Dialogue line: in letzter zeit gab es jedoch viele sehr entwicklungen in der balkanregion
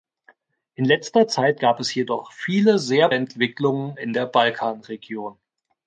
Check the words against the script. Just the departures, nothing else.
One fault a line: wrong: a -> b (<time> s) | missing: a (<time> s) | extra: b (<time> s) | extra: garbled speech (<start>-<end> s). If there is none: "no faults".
no faults